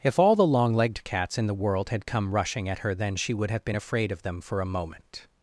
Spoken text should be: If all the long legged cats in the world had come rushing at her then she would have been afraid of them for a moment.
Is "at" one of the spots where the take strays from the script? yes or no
no